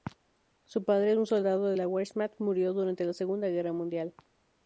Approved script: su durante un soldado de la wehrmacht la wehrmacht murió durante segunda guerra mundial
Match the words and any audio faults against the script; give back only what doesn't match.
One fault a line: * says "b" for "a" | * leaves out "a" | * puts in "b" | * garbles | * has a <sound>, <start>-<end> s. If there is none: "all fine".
* says "padre" for "durante"
* leaves out "la wehrmacht"
* puts in "la"